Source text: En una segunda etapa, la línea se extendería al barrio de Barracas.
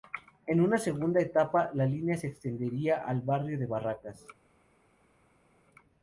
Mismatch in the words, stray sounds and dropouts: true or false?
false